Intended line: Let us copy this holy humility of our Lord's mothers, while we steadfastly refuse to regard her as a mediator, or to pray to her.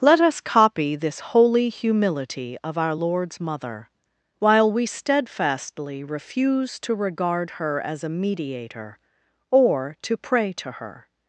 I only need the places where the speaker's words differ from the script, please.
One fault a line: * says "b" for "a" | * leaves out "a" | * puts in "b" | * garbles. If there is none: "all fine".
* says "mother" for "mothers"